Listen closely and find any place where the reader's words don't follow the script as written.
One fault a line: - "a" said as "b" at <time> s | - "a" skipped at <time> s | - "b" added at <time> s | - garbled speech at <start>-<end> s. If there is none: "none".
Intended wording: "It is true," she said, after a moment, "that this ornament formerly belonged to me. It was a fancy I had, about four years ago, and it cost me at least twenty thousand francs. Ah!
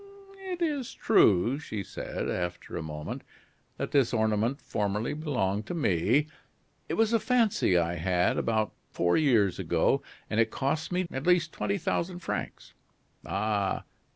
none